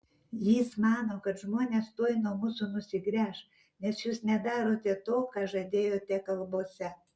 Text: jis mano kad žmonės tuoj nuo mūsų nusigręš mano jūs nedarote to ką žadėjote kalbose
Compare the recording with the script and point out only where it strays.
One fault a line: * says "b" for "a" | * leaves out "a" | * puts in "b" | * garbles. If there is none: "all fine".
* says "nes" for "mano"